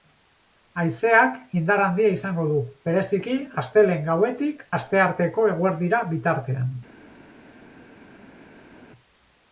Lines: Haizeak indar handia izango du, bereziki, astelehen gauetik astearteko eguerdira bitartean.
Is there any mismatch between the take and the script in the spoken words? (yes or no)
no